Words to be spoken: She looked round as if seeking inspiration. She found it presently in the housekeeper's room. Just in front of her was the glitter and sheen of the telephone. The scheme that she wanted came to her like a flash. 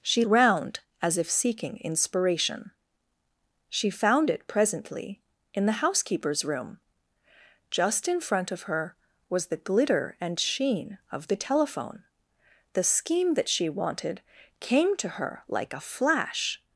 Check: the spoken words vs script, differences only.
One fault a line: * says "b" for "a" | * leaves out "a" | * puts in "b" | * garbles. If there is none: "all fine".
* leaves out "looked"